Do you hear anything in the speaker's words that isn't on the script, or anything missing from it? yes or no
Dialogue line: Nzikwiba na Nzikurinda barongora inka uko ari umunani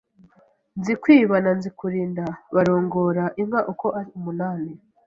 no